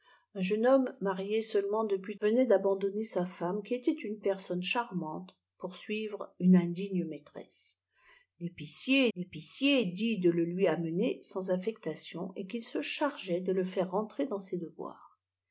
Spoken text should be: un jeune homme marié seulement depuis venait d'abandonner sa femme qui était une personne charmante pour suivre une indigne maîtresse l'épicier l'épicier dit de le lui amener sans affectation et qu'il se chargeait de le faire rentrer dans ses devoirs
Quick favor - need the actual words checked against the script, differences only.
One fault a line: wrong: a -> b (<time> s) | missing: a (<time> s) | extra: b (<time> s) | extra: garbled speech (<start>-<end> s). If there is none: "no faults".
no faults